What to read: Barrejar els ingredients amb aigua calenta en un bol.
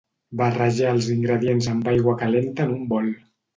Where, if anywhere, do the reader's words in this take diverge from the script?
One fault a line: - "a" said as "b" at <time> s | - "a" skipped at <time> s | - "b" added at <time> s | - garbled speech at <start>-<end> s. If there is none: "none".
none